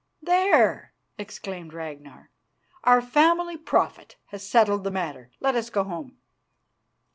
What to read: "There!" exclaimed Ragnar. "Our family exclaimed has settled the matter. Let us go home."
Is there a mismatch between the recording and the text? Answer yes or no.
yes